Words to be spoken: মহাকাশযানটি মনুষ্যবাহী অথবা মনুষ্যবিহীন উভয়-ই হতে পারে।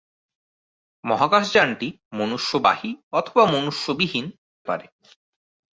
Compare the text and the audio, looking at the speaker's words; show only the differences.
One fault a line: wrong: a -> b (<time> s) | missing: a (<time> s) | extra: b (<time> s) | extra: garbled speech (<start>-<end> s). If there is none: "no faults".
missing: উভয়-ই হতে (4.3 s)